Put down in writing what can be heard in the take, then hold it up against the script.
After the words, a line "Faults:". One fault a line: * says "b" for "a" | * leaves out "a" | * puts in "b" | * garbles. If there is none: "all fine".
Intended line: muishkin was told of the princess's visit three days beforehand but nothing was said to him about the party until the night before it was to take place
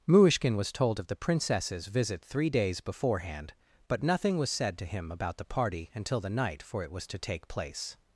muishkin was told of the princess's visit three days beforehand but nothing was said to him about the party until the night for it was to take place
Faults:
* says "for" for "before"